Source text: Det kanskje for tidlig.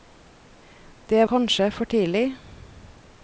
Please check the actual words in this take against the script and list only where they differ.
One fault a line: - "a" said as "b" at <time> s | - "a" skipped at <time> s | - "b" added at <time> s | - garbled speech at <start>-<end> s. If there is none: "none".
none